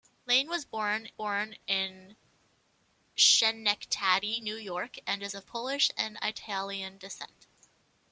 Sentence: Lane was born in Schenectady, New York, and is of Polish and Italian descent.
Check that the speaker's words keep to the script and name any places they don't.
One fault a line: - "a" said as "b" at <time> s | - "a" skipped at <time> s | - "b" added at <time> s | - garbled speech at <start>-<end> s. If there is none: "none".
- "born" added at 1.1 s